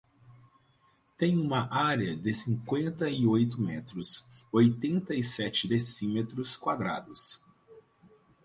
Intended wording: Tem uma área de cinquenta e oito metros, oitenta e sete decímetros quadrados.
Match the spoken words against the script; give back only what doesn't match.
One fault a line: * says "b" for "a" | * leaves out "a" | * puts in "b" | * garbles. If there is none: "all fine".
all fine